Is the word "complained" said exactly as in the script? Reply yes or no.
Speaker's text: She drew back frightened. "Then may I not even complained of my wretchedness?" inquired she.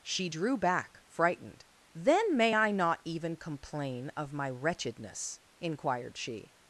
no